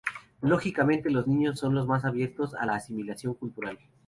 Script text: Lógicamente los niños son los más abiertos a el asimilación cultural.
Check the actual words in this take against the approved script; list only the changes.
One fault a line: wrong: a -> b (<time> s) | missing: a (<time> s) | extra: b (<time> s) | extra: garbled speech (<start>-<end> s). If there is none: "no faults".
wrong: el -> la (2.6 s)